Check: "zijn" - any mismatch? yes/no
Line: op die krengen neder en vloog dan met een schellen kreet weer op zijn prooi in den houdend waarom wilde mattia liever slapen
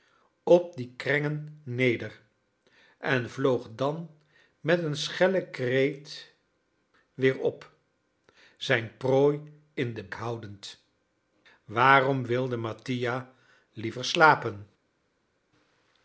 no